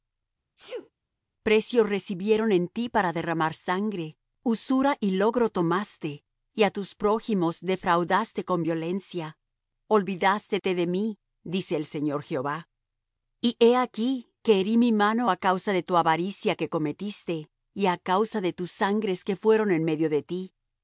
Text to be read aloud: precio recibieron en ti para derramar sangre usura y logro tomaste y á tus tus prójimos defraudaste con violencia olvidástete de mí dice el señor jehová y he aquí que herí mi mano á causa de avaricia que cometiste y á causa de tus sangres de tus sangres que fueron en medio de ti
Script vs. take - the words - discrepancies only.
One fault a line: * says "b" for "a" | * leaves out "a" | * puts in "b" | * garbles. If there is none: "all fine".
* leaves out "tus"
* puts in "tu"
* leaves out "de tus sangres"